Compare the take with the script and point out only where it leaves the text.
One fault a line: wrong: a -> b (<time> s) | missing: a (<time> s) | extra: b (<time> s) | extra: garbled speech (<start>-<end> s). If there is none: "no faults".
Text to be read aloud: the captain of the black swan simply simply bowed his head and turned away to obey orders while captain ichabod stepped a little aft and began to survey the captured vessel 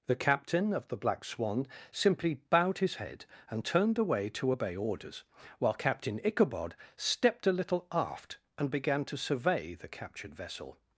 missing: simply (2.3 s)